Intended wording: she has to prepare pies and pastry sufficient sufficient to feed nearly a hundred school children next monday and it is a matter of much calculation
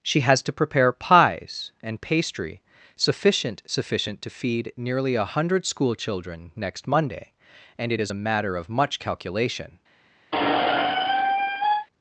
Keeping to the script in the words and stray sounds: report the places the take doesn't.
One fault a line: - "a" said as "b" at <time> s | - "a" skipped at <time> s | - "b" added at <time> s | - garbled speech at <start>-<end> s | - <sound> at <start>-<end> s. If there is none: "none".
- squeak at 10.3-11.9 s